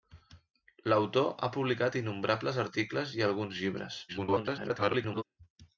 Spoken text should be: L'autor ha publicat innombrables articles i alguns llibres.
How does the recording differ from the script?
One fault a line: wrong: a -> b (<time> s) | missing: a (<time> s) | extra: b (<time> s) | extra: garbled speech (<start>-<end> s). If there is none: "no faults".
extra: garbled speech (4.1-5.2 s)